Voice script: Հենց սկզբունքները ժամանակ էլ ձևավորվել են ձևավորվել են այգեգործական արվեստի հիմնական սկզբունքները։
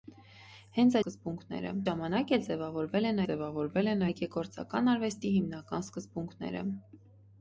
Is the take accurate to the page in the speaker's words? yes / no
yes